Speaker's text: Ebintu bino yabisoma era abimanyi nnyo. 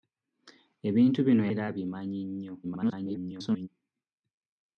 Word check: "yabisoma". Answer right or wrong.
wrong